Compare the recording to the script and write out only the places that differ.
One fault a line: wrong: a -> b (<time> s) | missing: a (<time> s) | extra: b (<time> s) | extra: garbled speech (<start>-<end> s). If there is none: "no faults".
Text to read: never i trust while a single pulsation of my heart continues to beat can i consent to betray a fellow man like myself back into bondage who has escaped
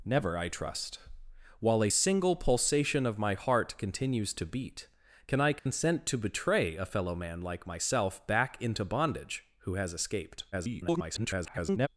extra: garbled speech (10.5-11.9 s)